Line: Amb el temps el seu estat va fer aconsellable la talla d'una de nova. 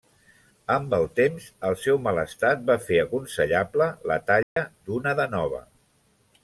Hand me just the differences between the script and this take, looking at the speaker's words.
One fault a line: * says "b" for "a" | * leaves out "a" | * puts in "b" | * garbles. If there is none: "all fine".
* puts in "mal"